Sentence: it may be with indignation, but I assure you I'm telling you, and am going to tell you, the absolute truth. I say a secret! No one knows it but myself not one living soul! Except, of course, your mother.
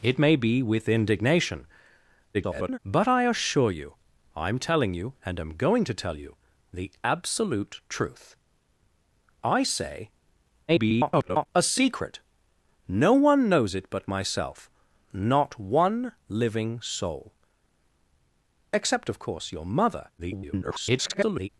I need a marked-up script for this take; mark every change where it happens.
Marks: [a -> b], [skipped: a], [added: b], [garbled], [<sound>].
it may be with indignation, [garbled] but I assure you I'm telling you, and am going to tell you, the absolute truth. I say [garbled] a secret! No one knows it but myself not one living soul! Except, of course, your mother. [garbled]